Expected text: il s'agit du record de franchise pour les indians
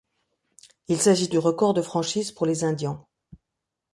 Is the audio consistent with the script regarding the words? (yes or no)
yes